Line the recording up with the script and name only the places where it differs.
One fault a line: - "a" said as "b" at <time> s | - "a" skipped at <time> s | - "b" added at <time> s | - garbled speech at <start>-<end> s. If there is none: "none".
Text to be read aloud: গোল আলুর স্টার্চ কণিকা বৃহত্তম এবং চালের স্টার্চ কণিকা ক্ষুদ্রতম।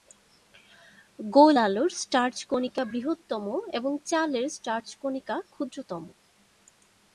none